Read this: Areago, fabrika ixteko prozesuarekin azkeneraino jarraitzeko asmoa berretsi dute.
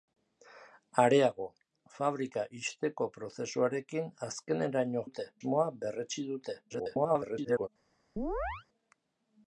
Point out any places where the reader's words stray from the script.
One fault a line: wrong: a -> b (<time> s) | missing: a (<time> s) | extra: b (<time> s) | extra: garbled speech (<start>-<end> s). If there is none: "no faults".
wrong: jarraitzeko -> dute (5.1 s)
extra: garbled speech (6.7-7.7 s)